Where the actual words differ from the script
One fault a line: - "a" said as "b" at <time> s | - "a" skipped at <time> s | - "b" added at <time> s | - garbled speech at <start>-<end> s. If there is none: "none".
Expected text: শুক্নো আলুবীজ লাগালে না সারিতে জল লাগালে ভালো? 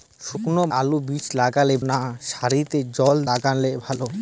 none